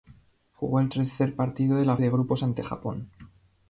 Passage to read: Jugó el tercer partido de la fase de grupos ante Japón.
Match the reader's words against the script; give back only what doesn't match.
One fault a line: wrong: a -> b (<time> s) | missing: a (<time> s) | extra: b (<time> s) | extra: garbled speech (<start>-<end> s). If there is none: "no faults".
missing: fase (2.0 s)